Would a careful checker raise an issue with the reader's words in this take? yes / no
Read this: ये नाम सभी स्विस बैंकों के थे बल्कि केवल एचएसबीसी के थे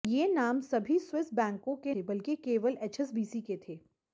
no